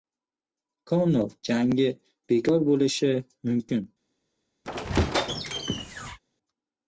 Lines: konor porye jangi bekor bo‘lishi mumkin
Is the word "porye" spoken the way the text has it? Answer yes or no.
no